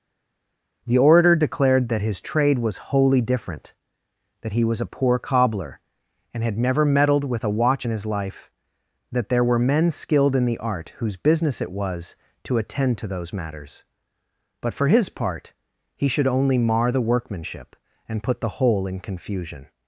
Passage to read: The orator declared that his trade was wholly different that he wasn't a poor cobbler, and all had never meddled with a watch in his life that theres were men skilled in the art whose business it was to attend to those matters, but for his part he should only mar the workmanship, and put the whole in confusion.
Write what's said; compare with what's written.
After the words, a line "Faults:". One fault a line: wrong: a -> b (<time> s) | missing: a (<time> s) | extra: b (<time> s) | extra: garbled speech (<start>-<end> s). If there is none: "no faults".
The orator declared that his trade was wholly different that he was a poor cobbler, and had never meddled with a watch in his life that there were men skilled in the art whose business it was to attend to those matters, but for his part he should only mar the workmanship, and put the whole in confusion.
Faults:
wrong: wasn't -> was (4.6 s)
missing: all (6.4 s)
wrong: theres -> there (9.3 s)